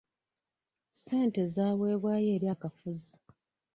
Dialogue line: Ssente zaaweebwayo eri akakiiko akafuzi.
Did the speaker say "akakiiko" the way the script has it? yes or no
no